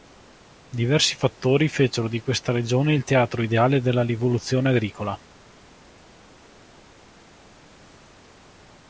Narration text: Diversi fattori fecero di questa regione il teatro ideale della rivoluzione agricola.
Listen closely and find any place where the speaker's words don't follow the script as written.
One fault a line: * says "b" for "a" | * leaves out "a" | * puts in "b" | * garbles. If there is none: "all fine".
all fine